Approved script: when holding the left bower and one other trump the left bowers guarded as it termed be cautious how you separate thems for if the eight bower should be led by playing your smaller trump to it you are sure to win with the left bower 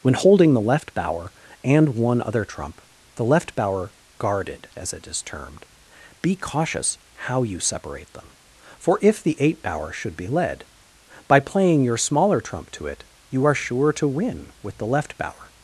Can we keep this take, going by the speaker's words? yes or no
no